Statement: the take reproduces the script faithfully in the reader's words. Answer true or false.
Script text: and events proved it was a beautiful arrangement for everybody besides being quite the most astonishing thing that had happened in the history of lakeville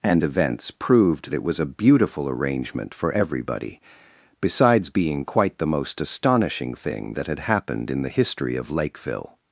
true